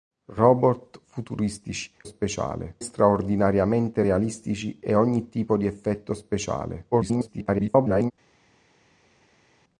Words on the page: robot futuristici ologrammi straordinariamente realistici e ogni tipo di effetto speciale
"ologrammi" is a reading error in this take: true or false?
true